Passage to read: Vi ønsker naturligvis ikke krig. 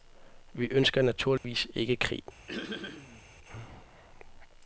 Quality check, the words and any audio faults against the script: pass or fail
fail